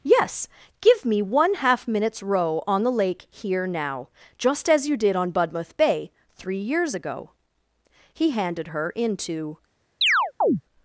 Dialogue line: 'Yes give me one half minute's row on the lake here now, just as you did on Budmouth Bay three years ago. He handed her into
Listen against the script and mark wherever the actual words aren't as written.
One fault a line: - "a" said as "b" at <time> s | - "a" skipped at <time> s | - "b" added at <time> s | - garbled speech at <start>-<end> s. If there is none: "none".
none